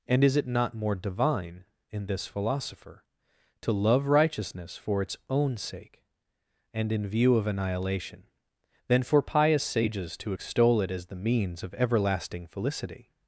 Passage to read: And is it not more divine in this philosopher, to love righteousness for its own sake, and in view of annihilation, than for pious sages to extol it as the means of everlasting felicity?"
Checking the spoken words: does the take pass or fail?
pass